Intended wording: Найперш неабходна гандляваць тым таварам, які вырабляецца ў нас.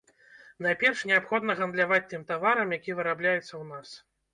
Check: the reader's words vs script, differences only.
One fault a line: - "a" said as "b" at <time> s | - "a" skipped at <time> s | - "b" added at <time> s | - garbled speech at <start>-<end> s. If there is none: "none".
none